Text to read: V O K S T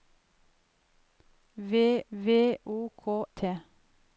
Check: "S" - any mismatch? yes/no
yes